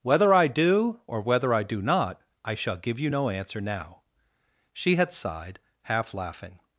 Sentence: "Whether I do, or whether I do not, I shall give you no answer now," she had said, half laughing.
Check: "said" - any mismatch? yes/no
yes